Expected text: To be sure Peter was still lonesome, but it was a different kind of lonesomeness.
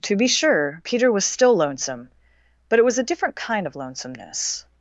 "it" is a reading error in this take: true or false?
false